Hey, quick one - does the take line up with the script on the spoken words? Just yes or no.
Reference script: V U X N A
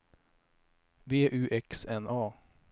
yes